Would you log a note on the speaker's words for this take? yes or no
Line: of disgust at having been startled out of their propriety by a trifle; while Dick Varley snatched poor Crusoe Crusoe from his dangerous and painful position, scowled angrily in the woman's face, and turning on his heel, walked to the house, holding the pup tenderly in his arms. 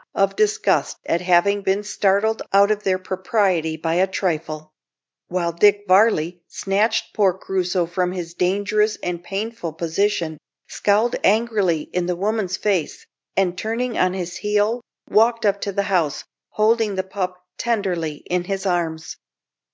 yes